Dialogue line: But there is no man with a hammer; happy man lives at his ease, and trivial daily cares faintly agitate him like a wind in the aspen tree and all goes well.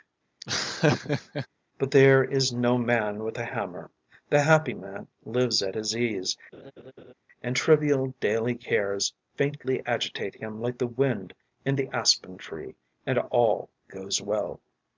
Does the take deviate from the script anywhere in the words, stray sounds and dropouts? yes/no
yes